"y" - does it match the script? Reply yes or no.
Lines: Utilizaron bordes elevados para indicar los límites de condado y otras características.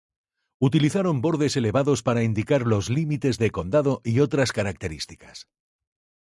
yes